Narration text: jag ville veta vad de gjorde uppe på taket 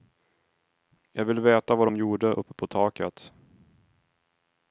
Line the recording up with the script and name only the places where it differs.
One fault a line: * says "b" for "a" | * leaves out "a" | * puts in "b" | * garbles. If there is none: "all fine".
all fine